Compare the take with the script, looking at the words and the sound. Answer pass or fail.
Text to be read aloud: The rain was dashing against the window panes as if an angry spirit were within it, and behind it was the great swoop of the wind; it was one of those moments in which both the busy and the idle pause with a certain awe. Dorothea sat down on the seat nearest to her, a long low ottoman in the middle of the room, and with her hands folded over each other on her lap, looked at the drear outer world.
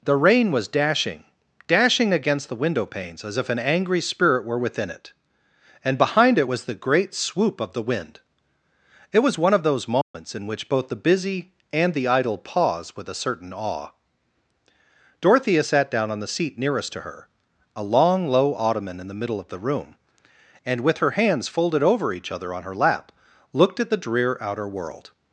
fail